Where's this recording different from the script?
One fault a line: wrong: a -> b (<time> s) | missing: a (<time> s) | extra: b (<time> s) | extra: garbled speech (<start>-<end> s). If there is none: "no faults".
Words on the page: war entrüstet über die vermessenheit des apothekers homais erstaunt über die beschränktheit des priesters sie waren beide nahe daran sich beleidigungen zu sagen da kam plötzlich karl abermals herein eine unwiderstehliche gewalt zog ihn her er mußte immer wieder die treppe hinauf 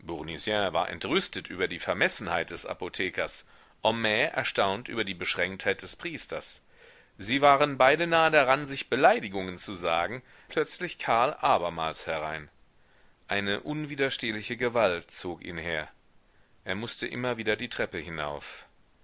missing: da kam (10.2 s)